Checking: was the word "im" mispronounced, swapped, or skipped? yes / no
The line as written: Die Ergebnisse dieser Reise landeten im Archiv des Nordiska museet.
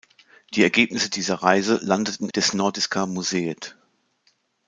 yes